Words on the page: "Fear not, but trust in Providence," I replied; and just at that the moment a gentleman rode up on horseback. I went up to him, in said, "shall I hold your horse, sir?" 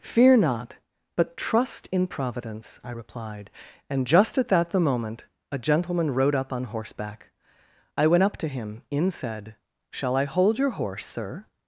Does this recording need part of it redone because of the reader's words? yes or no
no